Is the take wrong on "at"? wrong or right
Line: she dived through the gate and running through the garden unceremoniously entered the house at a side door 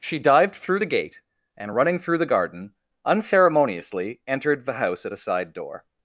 right